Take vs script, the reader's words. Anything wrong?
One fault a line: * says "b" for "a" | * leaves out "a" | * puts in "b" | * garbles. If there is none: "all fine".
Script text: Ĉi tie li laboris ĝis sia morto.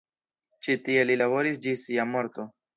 all fine